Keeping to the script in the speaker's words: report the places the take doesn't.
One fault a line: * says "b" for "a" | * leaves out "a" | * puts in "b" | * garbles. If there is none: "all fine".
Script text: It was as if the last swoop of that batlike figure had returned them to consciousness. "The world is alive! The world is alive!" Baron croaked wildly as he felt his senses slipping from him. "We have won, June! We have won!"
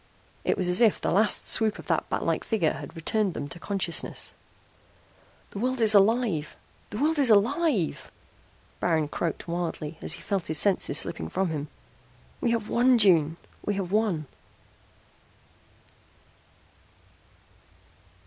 all fine